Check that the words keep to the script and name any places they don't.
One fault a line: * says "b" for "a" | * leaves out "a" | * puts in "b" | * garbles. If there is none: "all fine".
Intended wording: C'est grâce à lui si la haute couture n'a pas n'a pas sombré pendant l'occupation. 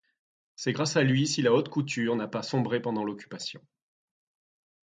* leaves out "n'a pas"